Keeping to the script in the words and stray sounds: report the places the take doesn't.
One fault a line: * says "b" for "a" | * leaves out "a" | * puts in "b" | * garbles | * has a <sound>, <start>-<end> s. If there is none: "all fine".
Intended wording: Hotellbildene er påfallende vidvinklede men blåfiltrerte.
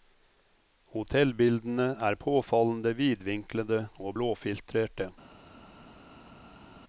* says "og" for "men"